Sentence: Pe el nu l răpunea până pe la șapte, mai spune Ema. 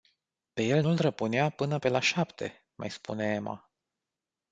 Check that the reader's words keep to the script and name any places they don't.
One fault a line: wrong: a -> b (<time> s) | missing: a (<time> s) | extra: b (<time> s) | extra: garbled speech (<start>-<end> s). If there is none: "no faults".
no faults